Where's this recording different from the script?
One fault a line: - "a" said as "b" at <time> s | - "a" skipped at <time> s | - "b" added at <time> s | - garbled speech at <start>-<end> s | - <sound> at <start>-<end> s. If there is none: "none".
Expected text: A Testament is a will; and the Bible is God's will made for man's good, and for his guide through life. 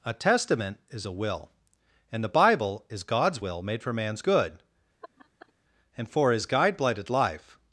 - laugh at 5.0-5.5 s
- "through" said as "blighted" at 6.8 s